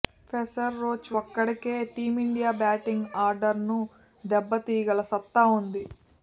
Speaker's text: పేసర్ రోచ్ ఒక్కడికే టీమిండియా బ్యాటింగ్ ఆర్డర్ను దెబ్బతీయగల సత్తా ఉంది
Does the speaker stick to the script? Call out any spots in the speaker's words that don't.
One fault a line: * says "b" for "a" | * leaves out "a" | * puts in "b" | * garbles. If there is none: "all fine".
all fine